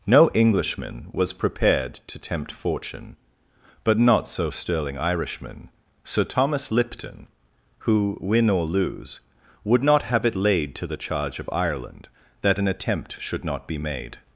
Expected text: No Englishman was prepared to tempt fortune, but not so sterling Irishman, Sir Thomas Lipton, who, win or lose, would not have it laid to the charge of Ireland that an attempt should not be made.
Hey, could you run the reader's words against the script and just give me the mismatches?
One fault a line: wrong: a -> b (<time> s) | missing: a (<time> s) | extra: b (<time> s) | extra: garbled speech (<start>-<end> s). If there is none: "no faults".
no faults